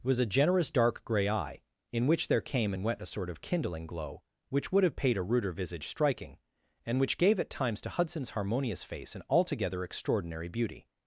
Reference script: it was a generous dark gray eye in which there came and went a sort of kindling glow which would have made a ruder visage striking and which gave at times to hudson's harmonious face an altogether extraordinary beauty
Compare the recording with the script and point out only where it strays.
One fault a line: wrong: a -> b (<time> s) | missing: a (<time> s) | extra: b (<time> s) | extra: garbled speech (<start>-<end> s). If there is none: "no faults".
wrong: made -> paid (5.0 s)